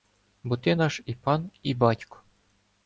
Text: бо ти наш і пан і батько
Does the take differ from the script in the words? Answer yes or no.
no